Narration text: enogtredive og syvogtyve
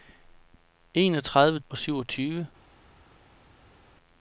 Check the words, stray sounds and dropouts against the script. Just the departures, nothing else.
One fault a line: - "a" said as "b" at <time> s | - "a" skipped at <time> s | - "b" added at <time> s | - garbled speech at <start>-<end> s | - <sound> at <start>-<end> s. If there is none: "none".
none